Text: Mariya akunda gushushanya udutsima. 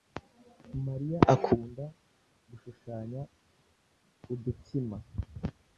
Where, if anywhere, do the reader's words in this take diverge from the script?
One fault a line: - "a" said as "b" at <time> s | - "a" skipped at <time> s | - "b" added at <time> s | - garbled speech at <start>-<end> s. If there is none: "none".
none